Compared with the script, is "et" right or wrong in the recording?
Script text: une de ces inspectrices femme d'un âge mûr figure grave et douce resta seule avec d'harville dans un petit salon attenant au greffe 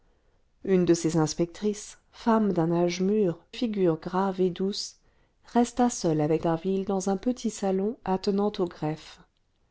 right